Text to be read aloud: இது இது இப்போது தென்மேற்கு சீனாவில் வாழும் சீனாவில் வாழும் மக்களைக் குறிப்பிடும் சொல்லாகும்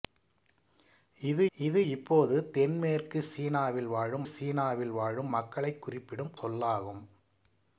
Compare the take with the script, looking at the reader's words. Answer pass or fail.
pass